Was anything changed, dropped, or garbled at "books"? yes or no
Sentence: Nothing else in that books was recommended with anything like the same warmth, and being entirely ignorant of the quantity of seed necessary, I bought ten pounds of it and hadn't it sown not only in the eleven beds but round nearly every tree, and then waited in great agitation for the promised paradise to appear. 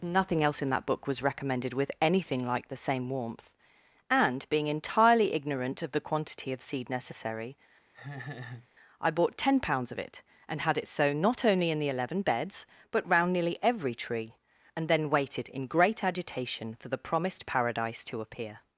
yes